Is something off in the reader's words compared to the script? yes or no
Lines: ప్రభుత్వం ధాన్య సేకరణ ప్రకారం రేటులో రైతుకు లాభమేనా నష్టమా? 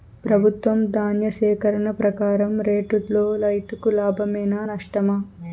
no